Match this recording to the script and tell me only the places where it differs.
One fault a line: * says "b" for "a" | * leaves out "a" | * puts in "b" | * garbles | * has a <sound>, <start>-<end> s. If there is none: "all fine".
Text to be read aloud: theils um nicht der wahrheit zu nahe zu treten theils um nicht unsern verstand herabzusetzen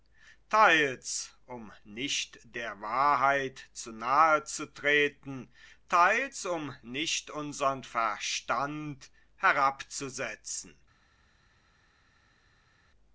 all fine